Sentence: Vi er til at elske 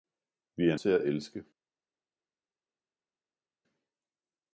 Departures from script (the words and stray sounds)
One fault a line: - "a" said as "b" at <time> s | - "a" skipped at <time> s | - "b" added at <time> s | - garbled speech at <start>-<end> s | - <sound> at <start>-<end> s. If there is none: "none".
none